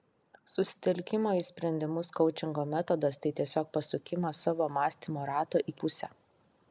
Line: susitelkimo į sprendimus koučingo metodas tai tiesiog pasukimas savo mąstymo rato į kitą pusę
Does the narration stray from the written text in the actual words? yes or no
yes